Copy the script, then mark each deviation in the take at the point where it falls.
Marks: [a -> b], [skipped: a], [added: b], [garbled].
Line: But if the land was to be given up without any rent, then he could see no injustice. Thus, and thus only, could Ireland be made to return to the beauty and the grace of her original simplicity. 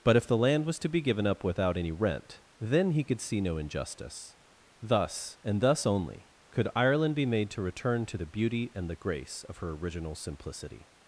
But if the land was to be given up without any rent, then he could see no injustice. Thus, and thus only, could Ireland be made to return to the beauty and the grace of her original simplicity.